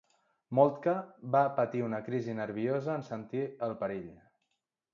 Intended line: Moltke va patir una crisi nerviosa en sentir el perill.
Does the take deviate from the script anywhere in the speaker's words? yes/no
no